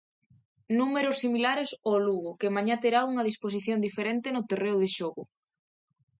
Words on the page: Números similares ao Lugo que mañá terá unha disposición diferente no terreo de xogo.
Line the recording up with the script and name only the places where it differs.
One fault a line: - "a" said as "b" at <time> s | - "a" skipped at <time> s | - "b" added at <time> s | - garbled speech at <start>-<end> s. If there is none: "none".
none